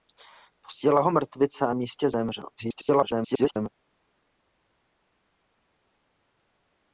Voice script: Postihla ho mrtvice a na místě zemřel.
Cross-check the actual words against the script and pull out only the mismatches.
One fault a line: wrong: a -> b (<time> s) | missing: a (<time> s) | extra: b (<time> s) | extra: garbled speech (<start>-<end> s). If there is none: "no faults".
missing: na (1.7 s)
extra: garbled speech (2.6-3.7 s)